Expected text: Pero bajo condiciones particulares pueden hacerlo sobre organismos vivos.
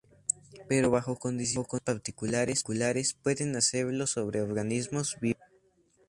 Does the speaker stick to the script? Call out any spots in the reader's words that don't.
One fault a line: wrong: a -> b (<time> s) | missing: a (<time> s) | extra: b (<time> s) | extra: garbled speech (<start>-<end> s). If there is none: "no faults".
no faults